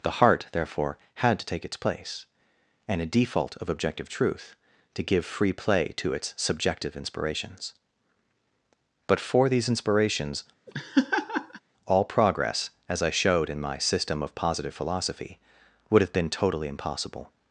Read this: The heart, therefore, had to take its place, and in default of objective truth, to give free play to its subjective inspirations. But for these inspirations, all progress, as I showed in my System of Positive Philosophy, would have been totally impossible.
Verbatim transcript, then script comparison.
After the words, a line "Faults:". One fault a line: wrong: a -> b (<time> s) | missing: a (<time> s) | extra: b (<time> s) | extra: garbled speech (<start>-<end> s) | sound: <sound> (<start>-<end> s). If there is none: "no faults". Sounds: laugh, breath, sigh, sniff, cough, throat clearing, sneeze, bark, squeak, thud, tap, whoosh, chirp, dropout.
The heart, therefore, had to take its place, and a default of objective truth, to give free play to its subjective inspirations. But for these inspirations, all progress, as I showed in my System of Positive Philosophy, would have been totally impossible.
Faults:
wrong: in -> a (3.0 s)
sound: laugh (10.7-11.6 s)